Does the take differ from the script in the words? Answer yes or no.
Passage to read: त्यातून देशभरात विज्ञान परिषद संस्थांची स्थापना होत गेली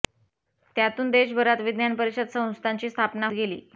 yes